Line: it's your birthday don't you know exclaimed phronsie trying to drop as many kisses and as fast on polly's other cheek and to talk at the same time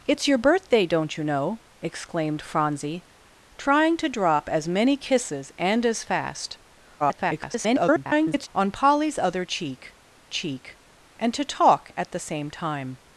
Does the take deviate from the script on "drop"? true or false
false